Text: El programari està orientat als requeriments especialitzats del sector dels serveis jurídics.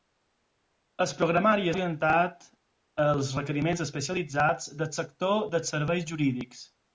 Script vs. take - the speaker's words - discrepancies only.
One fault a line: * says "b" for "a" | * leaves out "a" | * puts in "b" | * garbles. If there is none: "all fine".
* leaves out "està"